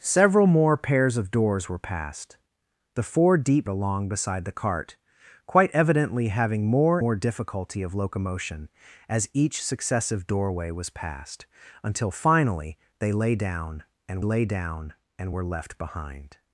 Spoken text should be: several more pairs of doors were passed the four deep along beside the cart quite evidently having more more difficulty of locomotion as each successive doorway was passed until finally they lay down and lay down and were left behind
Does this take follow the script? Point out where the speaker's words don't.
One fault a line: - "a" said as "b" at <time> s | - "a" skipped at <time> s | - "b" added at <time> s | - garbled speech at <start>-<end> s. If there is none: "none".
none